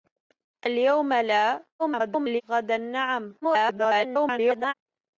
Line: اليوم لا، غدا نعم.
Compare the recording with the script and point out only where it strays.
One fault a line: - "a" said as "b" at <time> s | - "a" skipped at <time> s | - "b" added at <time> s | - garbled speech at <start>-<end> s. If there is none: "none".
- garbled speech at 1.8-2.4 s
- garbled speech at 3.4-4.7 s